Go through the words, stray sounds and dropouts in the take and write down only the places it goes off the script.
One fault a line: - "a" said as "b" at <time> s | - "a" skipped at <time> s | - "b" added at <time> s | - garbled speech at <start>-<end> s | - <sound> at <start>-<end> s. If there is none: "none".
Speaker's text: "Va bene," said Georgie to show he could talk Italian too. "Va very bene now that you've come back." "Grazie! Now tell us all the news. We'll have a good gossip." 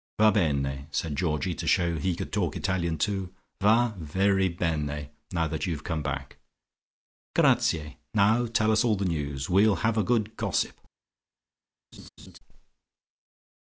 - laugh at 11.9-12.4 s